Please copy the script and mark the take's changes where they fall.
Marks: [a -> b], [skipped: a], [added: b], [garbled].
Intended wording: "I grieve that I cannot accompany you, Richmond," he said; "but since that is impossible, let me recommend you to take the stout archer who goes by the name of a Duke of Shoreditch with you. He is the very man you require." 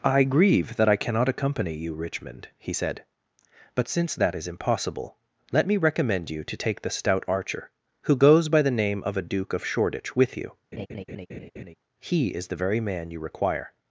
"I grieve that I cannot accompany you, Richmond," he said; "but since that is impossible, let me recommend you to take the stout archer who goes by the name of a Duke of Shoreditch with you. He is the very man you require."